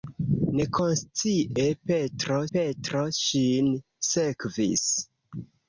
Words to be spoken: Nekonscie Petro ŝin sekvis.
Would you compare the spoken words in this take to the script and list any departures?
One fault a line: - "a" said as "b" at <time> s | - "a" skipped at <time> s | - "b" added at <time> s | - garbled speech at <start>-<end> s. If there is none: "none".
- "Petro" added at 2.6 s